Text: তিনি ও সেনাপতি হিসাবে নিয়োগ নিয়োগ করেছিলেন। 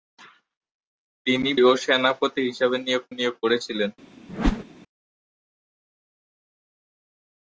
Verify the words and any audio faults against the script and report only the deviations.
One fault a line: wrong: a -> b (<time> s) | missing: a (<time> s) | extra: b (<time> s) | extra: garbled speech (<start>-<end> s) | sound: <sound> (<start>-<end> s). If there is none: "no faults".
sound: whoosh (4.3-4.6 s)